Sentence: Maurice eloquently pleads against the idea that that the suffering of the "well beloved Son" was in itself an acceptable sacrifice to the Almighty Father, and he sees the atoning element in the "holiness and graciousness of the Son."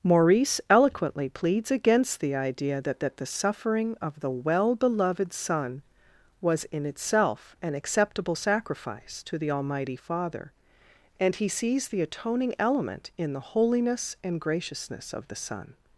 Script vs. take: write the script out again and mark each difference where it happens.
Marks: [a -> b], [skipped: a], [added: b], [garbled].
Maurice eloquently pleads against the idea that that the suffering of the "well beloved Son" was in itself an acceptable sacrifice to the Almighty Father, and he sees the atoning element in the "holiness and graciousness of the Son."